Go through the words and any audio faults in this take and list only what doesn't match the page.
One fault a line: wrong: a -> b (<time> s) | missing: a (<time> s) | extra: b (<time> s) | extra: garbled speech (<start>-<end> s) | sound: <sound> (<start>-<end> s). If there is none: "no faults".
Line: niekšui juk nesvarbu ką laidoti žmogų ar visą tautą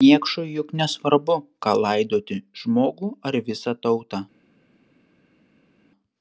no faults